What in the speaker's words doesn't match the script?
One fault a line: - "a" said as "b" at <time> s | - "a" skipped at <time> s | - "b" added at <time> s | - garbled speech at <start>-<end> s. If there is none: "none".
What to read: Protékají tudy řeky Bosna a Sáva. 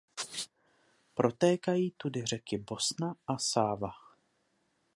none